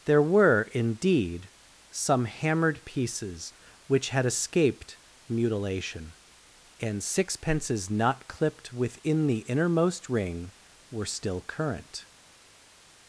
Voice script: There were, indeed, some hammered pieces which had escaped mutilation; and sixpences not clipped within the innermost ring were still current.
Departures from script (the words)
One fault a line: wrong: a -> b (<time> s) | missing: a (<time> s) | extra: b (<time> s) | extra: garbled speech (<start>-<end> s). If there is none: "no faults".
no faults